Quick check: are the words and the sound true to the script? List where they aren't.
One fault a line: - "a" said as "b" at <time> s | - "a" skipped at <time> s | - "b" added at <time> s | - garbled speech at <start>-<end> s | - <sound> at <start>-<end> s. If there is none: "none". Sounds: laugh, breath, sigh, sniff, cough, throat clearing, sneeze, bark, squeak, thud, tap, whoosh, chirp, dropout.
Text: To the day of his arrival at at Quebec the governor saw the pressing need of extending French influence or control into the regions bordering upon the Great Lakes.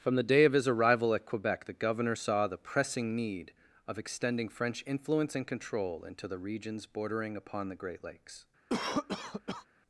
- "To" said as "From" at 0.0 s
- "at" skipped at 1.3 s
- "or" said as "and" at 5.3 s
- cough at 8.7-9.7 s